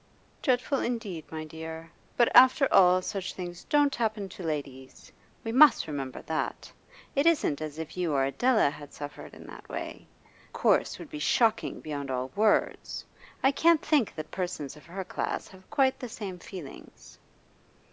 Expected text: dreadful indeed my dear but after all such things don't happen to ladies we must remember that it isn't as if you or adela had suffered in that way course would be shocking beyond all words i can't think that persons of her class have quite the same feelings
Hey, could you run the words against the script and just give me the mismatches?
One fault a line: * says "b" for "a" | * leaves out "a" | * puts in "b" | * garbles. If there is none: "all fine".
all fine